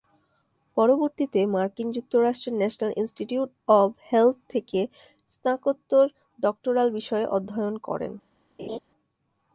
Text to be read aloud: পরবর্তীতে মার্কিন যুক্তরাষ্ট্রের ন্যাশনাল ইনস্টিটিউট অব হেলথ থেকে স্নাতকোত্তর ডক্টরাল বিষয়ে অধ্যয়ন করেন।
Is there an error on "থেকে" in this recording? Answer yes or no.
no